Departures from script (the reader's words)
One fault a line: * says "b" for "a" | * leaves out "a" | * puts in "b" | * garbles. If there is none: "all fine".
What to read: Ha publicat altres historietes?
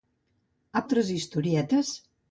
* leaves out "publicat"